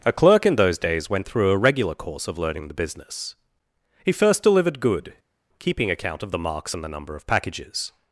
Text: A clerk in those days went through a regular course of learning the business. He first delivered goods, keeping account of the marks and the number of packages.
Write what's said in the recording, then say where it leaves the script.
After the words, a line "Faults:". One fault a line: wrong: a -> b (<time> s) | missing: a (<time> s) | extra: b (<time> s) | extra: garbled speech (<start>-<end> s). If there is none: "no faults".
A clerk in those days went through a regular course of learning the business. He first delivered good, keeping account of the marks and the number of packages.
Faults:
wrong: goods -> good (4.8 s)